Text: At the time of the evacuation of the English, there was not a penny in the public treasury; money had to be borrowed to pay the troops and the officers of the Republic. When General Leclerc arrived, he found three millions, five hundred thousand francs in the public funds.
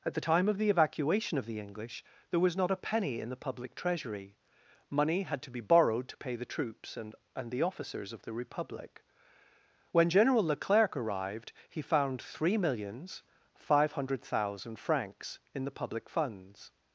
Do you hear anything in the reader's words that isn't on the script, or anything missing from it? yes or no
yes